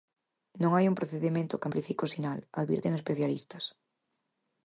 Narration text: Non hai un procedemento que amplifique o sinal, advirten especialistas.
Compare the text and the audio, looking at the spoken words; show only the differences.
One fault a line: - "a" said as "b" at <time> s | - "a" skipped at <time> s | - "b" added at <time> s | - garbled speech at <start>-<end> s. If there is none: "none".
none